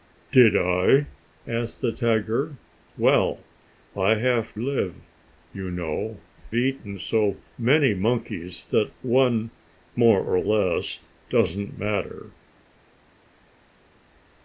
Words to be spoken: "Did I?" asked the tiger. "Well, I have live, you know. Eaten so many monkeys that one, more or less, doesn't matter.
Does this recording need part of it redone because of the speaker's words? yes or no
no